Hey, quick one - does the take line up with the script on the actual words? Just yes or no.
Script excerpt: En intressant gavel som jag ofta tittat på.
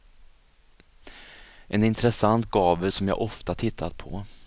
yes